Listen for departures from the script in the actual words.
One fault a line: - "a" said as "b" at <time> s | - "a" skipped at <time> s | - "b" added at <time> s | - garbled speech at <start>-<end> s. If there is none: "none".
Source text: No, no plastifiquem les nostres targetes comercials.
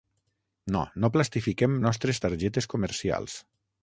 - "les" skipped at 1.8 s